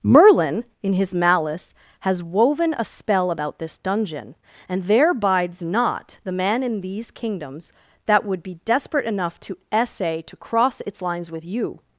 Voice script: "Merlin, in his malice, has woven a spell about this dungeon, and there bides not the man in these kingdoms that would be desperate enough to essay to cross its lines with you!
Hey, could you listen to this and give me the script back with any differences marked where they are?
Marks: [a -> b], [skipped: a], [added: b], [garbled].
"Merlin, in his malice, has woven a spell about this dungeon, and there bides not the man in these kingdoms that would be desperate enough to essay to cross its lines with you!